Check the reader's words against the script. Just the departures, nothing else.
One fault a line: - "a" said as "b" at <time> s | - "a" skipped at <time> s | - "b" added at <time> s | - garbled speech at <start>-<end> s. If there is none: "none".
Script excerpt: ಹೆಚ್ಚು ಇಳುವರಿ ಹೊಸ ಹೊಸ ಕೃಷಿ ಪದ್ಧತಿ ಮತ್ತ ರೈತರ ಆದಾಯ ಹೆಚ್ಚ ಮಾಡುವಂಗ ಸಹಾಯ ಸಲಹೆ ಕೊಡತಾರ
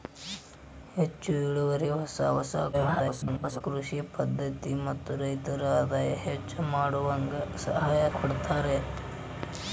- garbled speech at 2.7-3.6 s
- "ಸಲಹೆ" skipped at 8.0 s